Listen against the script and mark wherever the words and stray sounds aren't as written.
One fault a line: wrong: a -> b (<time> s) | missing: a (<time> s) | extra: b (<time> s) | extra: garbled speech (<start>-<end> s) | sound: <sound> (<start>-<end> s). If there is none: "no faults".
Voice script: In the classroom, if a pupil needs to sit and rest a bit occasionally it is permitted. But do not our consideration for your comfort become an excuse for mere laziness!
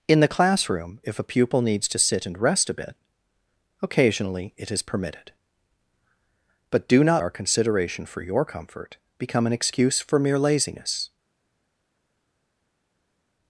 no faults